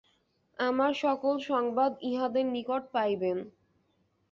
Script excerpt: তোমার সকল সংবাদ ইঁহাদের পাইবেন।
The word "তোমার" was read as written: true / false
false